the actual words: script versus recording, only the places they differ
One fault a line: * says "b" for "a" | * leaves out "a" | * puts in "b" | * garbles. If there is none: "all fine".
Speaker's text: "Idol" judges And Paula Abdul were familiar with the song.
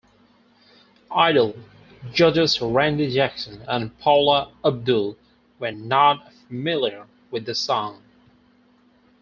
* puts in "Randy Jackson"
* puts in "not"